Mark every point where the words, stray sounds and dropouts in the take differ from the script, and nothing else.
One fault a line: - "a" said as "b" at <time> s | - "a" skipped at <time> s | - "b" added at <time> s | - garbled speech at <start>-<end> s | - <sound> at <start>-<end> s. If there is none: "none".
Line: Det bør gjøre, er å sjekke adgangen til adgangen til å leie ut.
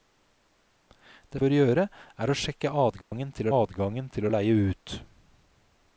- dropout at 3.0-3.1 s